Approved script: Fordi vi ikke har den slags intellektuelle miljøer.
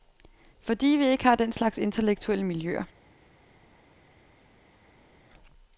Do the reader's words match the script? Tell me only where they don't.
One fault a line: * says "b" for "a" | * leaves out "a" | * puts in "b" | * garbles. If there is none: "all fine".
all fine